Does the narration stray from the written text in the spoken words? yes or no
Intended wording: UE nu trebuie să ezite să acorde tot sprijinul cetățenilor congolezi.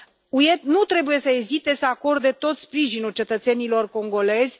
no